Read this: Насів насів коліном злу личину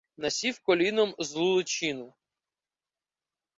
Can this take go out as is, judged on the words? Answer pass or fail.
fail